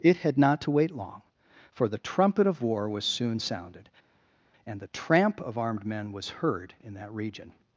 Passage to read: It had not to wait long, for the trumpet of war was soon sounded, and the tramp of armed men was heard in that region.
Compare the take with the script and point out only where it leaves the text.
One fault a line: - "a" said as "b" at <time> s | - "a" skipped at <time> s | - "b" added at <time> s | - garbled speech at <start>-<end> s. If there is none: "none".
none